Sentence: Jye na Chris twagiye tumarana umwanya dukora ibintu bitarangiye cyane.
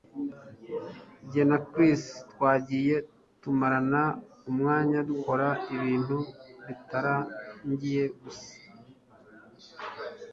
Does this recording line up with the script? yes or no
no